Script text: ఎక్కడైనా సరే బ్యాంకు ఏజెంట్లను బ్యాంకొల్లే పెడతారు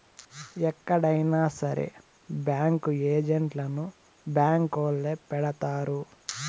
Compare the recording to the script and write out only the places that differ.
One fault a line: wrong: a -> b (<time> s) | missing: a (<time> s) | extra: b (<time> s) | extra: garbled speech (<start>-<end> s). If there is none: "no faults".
no faults